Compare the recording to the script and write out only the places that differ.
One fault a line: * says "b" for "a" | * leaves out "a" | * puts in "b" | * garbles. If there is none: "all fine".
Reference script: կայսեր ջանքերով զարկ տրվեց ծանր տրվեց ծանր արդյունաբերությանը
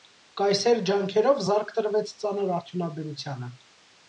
* leaves out "տրվեց ծանր"